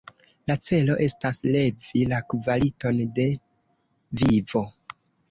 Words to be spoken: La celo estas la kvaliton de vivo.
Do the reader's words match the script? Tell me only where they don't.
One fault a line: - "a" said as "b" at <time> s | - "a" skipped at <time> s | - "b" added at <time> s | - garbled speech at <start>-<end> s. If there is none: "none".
- "levi" added at 1.6 s